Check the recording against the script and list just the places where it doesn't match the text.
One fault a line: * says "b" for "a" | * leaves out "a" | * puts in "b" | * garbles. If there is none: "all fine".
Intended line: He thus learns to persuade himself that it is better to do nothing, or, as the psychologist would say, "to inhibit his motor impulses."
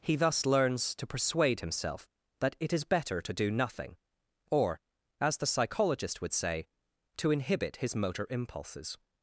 all fine